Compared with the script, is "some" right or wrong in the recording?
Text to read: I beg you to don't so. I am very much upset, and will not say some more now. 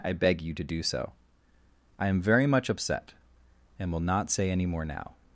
wrong